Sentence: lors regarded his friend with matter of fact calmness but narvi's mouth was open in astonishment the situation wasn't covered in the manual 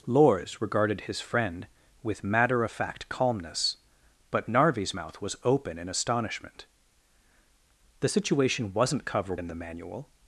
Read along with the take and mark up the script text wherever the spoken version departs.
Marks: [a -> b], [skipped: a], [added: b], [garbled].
lors regarded his friend with matter of fact calmness but narvi's mouth was open in astonishment the situation wasn't covered in the manual